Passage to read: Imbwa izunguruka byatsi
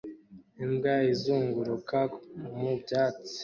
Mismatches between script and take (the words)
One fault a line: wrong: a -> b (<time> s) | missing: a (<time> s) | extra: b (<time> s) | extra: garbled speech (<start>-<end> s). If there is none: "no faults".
extra: mu (2.6 s)